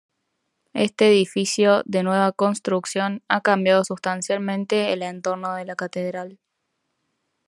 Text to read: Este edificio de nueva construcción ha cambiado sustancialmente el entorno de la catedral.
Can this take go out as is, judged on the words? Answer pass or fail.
pass